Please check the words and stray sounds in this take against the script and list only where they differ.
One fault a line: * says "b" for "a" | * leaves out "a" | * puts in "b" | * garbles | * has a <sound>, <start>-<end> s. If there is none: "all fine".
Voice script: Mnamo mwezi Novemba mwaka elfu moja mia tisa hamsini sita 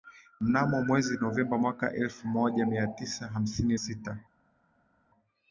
all fine